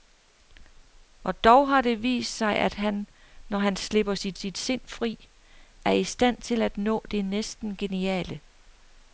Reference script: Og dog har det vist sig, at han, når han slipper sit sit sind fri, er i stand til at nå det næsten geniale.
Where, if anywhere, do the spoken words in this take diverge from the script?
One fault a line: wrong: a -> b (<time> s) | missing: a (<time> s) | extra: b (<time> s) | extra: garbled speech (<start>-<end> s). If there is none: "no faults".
no faults